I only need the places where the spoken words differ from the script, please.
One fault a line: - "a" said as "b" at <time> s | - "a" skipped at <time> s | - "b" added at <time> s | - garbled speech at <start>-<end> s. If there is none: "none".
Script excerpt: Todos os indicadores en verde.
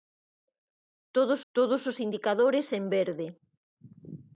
- "todos" added at 1.5 s